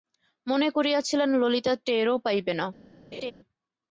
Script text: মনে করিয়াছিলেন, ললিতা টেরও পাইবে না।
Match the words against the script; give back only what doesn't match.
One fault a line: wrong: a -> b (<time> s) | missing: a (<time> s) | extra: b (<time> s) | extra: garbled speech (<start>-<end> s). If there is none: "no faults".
no faults